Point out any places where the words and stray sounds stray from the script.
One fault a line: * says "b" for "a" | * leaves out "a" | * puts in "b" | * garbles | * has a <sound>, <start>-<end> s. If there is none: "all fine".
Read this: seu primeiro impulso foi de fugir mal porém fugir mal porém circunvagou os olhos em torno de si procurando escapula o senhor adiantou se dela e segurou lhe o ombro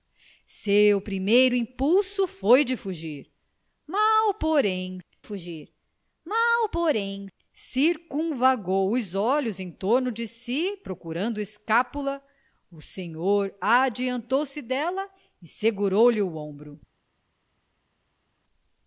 all fine